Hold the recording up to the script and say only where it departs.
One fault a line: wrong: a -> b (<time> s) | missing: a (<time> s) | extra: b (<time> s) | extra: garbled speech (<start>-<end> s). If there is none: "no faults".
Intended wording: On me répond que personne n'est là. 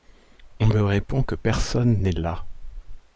no faults